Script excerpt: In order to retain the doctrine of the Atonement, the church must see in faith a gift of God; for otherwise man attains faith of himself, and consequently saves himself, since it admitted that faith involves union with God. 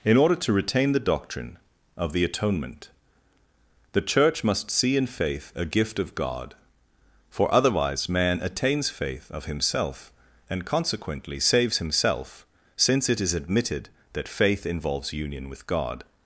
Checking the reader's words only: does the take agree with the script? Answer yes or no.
no